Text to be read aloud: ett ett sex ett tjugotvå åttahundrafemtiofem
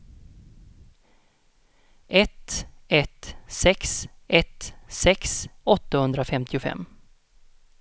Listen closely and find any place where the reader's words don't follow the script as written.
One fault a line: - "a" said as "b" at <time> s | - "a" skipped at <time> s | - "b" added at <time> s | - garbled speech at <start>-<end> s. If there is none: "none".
- "tjugotvå" said as "sex" at 4.9 s